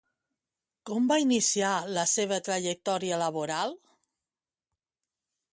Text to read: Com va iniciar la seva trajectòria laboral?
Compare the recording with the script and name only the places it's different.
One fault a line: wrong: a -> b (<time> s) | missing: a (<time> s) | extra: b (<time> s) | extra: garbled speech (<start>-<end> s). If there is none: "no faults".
no faults